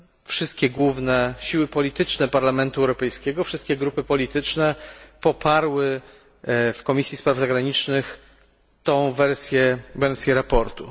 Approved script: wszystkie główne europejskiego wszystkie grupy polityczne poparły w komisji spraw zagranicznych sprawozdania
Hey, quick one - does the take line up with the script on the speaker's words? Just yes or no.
no